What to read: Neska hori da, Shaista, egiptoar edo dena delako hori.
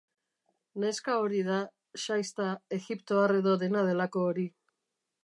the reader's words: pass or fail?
pass